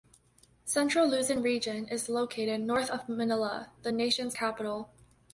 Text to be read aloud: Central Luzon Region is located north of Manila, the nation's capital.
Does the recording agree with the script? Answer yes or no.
yes